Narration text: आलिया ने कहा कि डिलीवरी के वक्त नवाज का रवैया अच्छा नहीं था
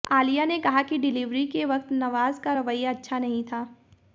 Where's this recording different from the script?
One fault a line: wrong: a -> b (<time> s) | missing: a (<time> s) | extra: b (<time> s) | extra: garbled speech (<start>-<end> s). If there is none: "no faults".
no faults